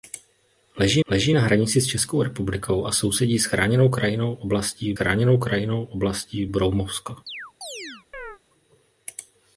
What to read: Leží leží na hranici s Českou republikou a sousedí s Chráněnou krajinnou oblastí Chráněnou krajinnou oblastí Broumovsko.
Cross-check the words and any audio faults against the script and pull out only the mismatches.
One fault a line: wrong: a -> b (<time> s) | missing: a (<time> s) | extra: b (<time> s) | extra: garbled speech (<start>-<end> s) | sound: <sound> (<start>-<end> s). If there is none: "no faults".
sound: chirp (7.3-8.4 s)